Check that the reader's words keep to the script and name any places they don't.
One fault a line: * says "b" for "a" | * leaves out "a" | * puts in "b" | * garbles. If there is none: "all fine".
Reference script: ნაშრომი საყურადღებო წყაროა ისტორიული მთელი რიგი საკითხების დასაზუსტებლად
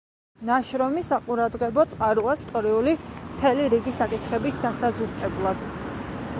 all fine